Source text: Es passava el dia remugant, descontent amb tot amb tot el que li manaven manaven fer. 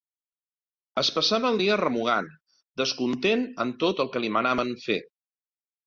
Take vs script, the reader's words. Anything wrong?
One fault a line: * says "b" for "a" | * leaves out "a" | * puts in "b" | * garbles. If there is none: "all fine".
* leaves out "amb tot"
* leaves out "manaven"